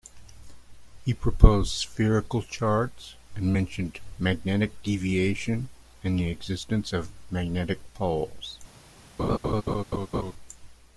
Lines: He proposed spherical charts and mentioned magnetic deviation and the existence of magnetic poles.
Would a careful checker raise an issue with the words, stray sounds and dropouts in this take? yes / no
yes